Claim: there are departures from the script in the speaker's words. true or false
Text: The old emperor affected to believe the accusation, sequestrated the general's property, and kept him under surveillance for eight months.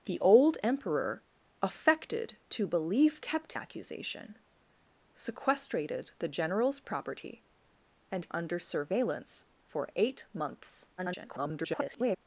true